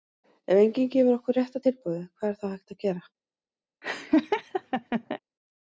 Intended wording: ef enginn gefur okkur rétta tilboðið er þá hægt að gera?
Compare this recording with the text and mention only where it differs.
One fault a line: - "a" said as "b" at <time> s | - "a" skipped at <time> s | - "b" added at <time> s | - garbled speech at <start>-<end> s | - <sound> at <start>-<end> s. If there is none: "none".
- "hvað" added at 2.1 s
- laugh at 3.8-5.2 s